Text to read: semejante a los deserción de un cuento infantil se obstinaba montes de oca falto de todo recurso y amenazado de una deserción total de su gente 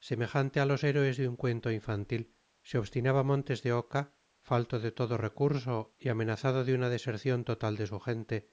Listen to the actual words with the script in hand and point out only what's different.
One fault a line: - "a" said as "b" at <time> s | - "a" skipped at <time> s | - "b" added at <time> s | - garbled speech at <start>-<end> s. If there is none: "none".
- "deserción" said as "héroes" at 0.8 s